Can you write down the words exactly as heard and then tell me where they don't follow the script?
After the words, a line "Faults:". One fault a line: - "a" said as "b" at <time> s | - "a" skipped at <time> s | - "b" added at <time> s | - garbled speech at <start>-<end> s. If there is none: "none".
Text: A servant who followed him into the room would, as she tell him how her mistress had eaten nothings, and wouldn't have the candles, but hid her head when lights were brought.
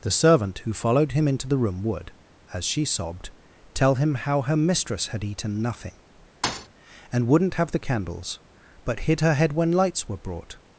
The servant who followed him into the room would, as she sobbed, tell him how her mistress had eaten nothing, and wouldn't have the candles, but hid her head when lights were brought.
Faults:
- "A" said as "The" at 0.0 s
- "sobbed" added at 2.9 s
- "nothings" said as "nothing" at 5.6 s